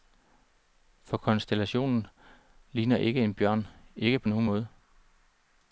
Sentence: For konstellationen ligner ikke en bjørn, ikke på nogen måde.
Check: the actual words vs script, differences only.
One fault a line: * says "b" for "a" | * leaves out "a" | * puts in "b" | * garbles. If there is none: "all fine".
all fine